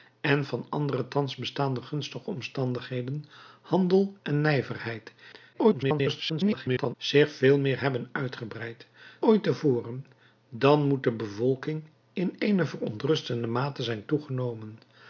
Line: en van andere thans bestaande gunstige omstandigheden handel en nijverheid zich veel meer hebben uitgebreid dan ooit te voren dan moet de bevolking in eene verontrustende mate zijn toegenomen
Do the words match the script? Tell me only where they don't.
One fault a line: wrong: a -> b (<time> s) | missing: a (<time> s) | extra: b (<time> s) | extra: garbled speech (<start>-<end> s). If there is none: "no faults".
extra: garbled speech (5.5-7.0 s)
missing: dan (8.9 s)